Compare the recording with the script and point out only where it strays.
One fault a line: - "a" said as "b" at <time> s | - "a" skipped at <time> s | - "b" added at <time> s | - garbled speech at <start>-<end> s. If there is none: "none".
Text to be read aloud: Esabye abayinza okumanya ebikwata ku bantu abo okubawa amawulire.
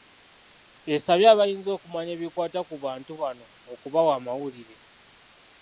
- "abo" said as "bano" at 3.2 s